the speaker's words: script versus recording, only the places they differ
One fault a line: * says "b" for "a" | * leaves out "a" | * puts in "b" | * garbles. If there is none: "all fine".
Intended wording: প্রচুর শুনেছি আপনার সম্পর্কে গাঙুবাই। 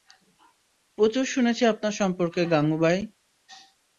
all fine